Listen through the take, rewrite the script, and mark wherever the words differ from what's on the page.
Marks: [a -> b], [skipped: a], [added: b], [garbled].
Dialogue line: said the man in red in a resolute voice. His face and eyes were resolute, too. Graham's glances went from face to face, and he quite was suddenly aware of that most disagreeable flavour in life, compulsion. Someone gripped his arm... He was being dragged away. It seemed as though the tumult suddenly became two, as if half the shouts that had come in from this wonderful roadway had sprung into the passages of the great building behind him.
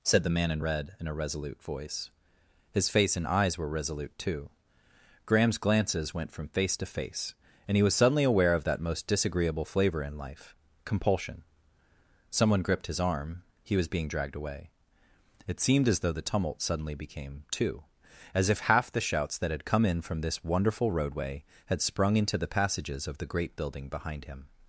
said the man in red in a resolute voice. His face and eyes were resolute, too. Graham's glances went from face to face, and he [skipped: quite] was suddenly aware of that most disagreeable flavour in life, compulsion. Someone gripped his arm... He was being dragged away. It seemed as though the tumult suddenly became two, as if half the shouts that had come in from this wonderful roadway had sprung into the passages of the great building behind him.